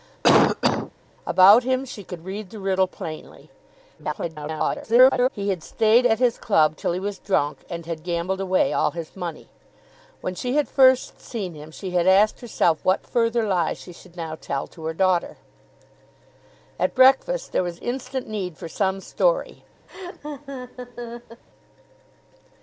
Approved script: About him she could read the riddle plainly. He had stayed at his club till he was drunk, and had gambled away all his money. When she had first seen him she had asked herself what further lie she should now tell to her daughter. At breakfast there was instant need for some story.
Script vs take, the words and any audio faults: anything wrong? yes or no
yes